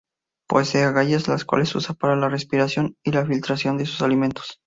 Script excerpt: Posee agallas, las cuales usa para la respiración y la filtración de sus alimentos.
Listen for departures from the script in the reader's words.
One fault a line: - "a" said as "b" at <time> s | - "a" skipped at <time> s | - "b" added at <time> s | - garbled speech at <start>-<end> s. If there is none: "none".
none